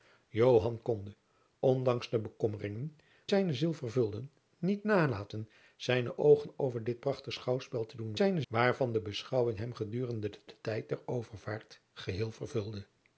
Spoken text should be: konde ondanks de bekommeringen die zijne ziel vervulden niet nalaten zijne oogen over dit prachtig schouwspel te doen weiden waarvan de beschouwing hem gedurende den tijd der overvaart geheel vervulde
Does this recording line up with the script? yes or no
no